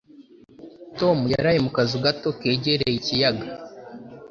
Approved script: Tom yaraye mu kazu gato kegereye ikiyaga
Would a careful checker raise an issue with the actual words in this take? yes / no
no